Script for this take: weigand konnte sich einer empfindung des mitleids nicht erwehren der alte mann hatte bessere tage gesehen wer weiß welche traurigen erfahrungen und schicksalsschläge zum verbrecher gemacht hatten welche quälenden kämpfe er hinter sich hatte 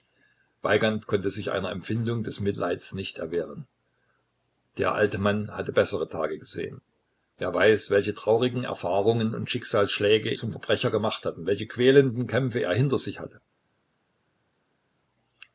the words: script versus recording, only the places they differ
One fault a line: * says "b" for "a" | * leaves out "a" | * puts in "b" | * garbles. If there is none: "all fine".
all fine